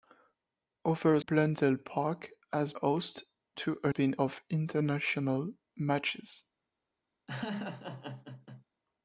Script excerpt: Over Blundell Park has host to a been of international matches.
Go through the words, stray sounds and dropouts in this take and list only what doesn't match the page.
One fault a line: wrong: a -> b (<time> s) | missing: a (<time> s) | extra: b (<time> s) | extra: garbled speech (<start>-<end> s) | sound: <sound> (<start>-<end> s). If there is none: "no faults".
sound: laugh (7.3-8.6 s)